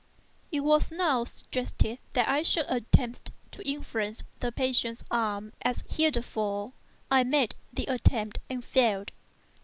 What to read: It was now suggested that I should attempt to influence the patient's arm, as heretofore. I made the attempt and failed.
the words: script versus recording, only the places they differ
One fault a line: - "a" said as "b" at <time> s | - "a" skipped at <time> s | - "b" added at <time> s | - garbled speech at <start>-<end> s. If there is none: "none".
none